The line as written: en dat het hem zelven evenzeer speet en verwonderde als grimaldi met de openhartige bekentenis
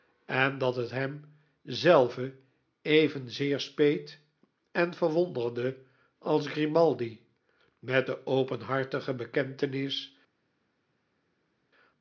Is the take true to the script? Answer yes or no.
yes